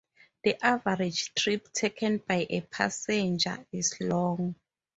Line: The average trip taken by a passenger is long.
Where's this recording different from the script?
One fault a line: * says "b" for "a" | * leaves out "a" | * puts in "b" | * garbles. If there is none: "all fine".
all fine